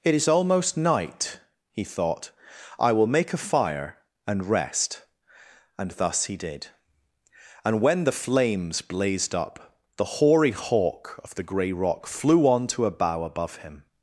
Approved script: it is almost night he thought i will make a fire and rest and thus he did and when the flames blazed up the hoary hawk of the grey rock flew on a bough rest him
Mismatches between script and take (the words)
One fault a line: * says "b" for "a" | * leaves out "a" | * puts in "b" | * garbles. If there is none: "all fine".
* puts in "to"
* says "above" for "rest"